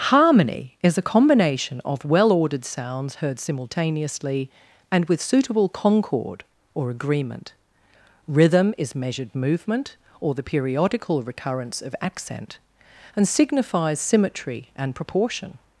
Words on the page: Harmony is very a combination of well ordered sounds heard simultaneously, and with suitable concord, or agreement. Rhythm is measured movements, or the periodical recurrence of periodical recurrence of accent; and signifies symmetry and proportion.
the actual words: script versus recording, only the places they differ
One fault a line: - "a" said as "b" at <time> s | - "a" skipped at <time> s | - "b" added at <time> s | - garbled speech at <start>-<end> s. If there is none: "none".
- "very" skipped at 1.0 s
- "movements" said as "movement" at 9.3 s
- "periodical recurrence of" skipped at 11.9 s